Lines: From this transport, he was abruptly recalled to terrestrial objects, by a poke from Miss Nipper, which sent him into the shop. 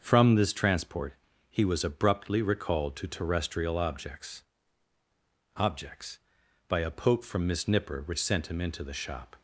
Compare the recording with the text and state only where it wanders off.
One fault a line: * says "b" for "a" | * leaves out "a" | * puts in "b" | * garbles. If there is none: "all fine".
* puts in "objects"